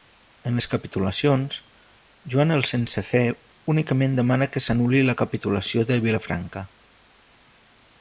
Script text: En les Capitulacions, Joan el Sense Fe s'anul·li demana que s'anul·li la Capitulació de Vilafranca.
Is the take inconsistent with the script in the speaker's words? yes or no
yes